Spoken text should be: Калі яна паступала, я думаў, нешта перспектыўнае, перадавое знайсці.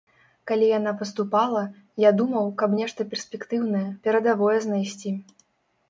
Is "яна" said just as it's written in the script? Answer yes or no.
yes